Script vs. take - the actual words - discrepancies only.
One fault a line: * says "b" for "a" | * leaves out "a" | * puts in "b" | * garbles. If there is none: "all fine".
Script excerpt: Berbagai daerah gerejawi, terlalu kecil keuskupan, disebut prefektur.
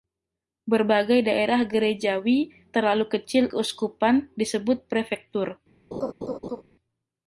all fine